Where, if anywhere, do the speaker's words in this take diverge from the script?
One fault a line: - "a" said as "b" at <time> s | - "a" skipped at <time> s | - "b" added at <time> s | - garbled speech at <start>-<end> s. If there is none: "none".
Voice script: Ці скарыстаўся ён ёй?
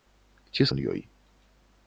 - "скарыстаўся" skipped at 0.7 s